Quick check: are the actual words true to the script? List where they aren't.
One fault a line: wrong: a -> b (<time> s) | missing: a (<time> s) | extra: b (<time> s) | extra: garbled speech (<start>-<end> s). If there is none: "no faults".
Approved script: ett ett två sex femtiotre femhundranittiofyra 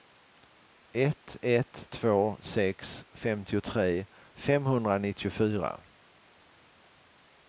no faults